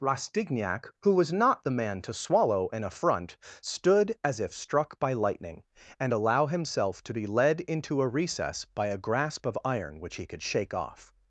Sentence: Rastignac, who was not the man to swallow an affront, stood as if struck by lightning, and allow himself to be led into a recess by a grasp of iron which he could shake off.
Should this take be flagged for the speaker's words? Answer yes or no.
no